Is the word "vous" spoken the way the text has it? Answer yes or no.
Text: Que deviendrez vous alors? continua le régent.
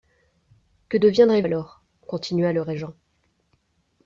no